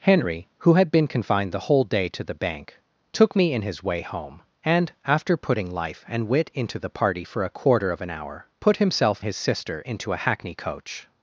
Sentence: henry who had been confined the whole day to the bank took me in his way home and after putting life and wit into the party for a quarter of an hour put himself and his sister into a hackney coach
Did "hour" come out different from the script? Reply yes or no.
no